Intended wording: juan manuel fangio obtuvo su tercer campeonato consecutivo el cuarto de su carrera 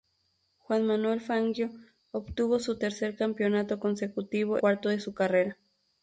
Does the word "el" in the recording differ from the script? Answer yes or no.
yes